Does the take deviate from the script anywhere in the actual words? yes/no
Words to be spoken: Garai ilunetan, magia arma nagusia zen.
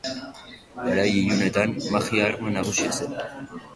no